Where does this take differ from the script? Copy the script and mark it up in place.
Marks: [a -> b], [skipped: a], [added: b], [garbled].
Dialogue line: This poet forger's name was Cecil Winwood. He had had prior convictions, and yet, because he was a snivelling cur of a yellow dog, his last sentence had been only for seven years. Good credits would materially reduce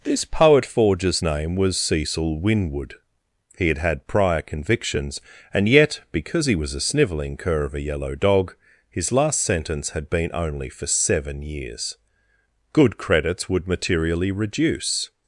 This poet forger's name was Cecil Winwood. He had had prior convictions, and yet, because he was a snivelling cur of a yellow dog, his last sentence had been only for seven years. Good credits would materially reduce